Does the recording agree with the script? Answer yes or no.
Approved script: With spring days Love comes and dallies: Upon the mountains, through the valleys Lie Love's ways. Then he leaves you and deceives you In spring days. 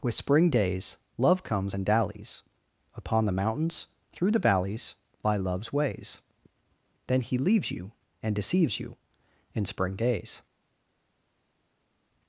yes